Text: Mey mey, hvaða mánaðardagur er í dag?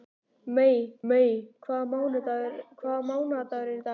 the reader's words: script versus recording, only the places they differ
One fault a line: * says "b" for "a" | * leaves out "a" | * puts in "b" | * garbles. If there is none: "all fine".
all fine